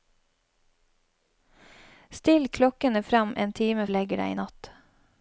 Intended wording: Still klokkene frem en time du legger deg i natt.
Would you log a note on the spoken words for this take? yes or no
no